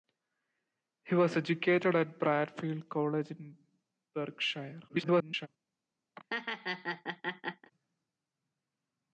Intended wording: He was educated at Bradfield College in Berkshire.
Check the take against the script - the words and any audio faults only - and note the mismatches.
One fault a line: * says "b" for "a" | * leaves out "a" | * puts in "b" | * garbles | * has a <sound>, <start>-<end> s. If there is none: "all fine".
* garbles
* has a laugh, 6.2-7.7 s